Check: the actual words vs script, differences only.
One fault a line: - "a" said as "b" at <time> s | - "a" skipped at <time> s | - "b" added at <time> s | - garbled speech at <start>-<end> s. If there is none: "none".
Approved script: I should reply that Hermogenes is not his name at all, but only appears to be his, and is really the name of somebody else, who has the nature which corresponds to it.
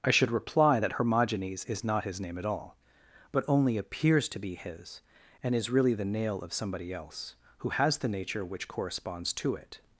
- "name" said as "nail" at 6.0 s